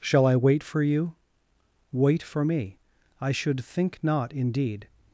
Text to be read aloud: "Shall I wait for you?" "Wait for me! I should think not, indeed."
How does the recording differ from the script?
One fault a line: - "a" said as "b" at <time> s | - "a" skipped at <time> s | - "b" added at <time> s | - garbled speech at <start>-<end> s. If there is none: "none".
none